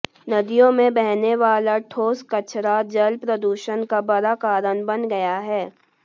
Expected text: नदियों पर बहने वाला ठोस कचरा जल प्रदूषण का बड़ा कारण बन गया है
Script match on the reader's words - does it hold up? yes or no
no